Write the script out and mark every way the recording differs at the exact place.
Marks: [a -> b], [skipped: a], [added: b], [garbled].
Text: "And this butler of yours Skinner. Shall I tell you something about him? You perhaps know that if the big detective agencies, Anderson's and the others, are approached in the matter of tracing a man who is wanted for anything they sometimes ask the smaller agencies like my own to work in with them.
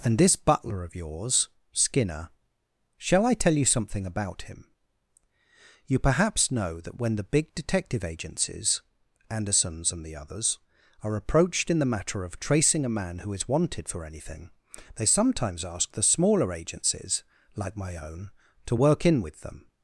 "And this butler of yours Skinner. Shall I tell you something about him? You perhaps know that [if -> when] the big detective agencies, Anderson's and the others, are approached in the matter of tracing a man who is wanted for anything they sometimes ask the smaller agencies like my own to work in with them.